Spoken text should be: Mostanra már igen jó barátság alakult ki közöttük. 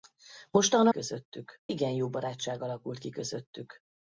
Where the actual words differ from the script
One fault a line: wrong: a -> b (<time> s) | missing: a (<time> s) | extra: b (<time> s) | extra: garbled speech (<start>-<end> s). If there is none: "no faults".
wrong: már -> közöttük (0.9 s)